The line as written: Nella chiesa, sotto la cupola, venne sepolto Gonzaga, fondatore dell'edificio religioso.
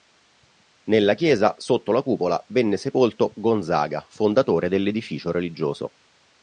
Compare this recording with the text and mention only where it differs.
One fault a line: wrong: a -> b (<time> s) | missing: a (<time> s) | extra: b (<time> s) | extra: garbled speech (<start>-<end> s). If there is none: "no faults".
no faults